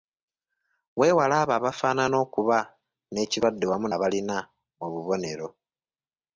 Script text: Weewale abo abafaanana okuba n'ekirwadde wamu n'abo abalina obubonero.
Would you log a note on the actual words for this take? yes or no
yes